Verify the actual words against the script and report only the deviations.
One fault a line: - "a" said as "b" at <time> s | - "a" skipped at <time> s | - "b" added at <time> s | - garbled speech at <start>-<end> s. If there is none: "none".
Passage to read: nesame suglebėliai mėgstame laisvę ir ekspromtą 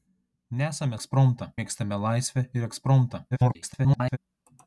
- "suglebėliai" said as "ekspromtą" at 1.0 s
- garbled speech at 3.3-4.2 s